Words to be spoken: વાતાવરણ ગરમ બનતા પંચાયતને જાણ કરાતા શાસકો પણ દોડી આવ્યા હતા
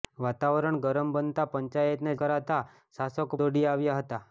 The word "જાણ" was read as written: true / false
false